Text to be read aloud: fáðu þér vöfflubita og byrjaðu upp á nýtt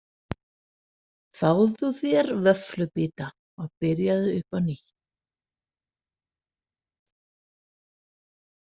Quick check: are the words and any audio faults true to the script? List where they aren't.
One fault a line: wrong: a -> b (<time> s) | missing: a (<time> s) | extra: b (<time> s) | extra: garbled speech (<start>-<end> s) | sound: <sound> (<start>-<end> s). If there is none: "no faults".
no faults